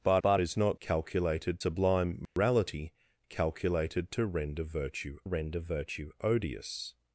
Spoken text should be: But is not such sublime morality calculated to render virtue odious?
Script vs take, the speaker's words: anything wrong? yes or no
yes